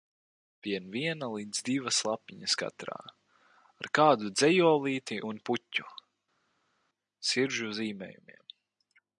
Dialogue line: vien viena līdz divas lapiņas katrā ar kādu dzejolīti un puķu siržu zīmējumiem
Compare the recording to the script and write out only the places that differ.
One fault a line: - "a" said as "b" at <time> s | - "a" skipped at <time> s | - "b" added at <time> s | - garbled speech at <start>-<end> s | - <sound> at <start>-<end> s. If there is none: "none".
none